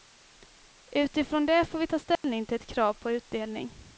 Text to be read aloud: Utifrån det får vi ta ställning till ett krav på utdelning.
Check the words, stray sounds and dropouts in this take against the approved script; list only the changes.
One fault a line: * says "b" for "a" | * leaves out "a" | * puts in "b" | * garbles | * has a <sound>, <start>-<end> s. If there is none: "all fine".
* has a dropout, 2.2-2.2 s